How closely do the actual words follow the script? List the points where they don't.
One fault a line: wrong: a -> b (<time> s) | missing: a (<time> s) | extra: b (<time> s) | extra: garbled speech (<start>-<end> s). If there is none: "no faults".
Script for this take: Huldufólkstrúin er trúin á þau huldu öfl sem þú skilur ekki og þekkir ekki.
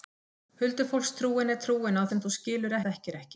missing: þau huldu öfl (2.0 s)
missing: ekki (2.8 s)